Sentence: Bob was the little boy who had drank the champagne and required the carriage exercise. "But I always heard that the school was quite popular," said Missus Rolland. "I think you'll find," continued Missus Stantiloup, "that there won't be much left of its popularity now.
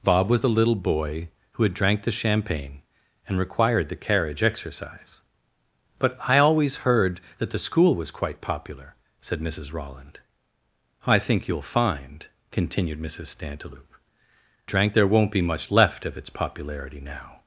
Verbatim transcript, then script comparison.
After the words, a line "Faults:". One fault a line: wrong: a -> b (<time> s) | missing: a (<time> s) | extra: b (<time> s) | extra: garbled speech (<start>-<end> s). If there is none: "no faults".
Bob was the little boy who had drank the champagne and required the carriage exercise. "But I always heard that the school was quite popular," said Missus Rolland. "I think you'll find," continued Missus Stantiloup, "drank there won't be much left of its popularity now.
Faults:
wrong: that -> drank (14.7 s)